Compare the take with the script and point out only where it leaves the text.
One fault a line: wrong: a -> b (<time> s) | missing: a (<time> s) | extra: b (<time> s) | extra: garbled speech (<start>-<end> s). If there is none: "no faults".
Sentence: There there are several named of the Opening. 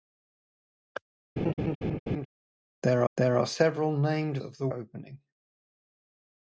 no faults